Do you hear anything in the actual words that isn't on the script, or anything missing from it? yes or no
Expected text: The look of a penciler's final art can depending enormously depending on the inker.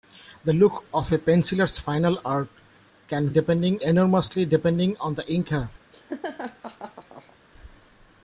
no